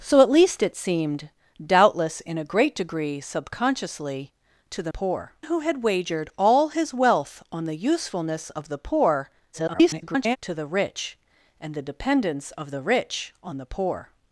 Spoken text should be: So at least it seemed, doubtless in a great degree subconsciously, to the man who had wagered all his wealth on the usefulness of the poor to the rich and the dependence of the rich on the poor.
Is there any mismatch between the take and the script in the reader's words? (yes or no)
yes